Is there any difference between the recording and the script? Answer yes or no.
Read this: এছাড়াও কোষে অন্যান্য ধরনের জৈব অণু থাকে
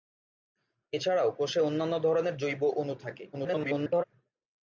yes